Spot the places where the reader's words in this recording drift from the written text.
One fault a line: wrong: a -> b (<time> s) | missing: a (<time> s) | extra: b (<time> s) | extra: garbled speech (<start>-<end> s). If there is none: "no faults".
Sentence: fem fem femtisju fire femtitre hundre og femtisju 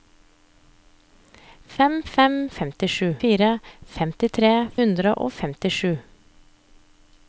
no faults